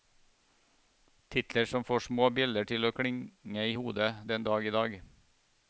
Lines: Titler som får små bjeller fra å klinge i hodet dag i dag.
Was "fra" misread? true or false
true